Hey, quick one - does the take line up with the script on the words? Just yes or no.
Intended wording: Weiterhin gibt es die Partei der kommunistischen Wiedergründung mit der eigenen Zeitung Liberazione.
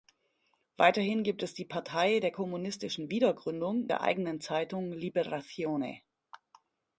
no